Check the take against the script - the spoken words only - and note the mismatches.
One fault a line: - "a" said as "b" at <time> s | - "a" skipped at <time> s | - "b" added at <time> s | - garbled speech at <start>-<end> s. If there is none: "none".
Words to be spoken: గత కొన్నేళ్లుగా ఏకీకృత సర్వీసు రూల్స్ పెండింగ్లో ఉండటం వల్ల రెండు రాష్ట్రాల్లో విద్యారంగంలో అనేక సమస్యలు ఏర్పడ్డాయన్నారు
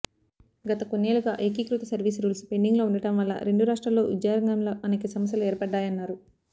none